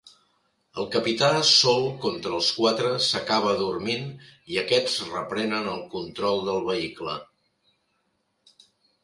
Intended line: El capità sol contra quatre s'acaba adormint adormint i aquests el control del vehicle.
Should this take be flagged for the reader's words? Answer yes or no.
yes